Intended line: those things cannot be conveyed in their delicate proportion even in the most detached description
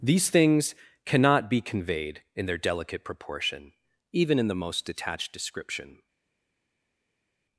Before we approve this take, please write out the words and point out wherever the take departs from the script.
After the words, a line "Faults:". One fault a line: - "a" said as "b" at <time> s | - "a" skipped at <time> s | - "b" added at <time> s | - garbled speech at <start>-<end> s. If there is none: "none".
these things cannot be conveyed in their delicate proportion even in the most detached description
Faults:
- "those" said as "these" at 0.0 s